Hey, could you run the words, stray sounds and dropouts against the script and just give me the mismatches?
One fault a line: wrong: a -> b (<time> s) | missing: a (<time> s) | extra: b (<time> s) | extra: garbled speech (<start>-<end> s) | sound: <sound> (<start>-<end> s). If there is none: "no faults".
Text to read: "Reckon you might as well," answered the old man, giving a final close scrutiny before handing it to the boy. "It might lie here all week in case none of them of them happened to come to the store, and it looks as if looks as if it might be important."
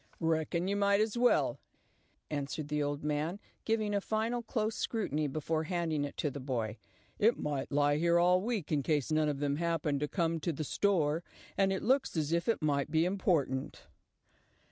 missing: of them (9.5 s)
missing: looks as if (12.5 s)